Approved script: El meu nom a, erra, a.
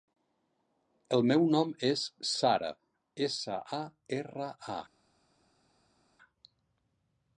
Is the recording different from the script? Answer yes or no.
yes